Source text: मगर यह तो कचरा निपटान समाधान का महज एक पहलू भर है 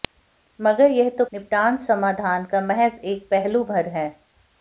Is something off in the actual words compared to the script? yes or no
yes